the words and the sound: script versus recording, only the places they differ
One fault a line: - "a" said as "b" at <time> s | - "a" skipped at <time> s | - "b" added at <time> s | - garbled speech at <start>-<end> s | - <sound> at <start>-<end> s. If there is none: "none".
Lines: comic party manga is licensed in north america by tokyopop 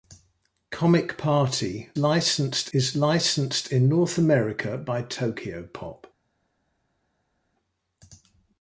- "manga" said as "licensed" at 2.0 s